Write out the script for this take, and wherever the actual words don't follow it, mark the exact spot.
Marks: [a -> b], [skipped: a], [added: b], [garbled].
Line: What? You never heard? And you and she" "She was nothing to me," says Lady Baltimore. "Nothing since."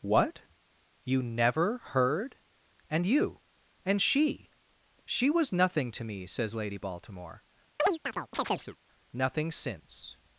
What? You never heard? And you and she" "She was nothing to me," says Lady Baltimore. "Nothing since."